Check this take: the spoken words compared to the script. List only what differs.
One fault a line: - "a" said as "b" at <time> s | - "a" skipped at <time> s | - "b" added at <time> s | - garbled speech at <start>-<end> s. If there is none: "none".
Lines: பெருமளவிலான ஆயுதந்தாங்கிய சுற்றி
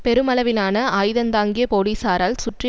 - "போலீசாரால்" added at 1.7 s